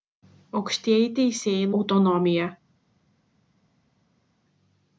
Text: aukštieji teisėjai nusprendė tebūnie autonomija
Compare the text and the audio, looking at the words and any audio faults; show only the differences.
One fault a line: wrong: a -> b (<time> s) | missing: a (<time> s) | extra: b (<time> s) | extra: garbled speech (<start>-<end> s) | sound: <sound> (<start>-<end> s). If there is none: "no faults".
missing: nusprendė tebūnie (1.7 s)